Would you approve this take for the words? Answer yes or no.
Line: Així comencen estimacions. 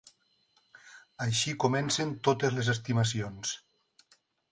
no